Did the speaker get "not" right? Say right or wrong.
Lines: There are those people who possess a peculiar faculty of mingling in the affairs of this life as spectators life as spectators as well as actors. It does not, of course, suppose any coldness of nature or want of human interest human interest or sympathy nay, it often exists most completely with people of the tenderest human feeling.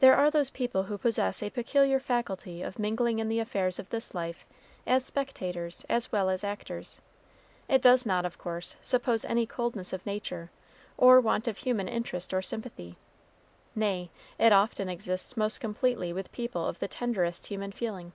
right